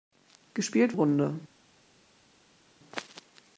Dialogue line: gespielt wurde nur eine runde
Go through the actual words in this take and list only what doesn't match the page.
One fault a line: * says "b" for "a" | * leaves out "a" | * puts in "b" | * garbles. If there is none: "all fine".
* leaves out "wurde nur eine"